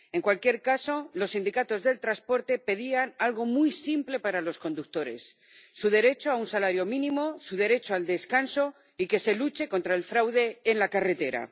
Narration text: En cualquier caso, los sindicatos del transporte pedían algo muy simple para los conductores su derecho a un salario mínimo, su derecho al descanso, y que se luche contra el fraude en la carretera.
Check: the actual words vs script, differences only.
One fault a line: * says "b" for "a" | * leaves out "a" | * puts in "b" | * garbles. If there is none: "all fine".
all fine